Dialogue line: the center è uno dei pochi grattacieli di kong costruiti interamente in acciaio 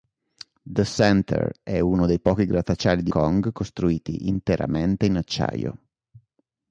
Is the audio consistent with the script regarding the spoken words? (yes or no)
yes